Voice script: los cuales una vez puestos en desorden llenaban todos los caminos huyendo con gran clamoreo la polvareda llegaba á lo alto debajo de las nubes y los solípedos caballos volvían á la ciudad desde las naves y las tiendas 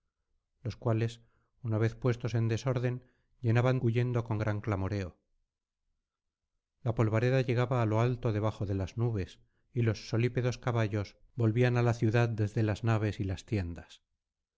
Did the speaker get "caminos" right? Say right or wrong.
wrong